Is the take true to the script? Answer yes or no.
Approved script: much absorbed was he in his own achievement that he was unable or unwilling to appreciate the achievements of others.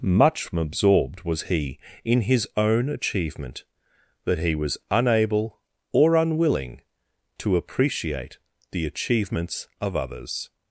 yes